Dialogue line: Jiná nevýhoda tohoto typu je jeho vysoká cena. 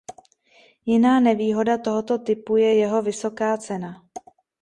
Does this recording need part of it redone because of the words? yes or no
no